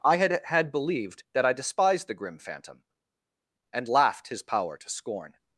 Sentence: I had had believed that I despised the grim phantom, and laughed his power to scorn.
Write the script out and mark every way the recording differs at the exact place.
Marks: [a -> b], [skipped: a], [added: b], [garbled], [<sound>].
I had had believed that I despised the grim phantom, and laughed his power to scorn.